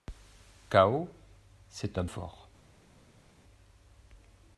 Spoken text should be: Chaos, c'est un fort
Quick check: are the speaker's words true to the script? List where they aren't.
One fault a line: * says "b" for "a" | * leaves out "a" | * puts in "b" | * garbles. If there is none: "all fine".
all fine